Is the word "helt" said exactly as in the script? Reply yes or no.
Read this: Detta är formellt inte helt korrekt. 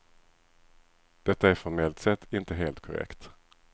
yes